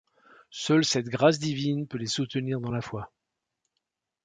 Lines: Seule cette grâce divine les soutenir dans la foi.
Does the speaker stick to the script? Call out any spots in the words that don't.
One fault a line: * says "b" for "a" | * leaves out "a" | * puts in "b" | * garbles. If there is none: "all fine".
* puts in "peut"